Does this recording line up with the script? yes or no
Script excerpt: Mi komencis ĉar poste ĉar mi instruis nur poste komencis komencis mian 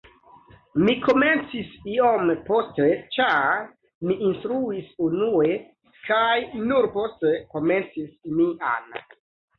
no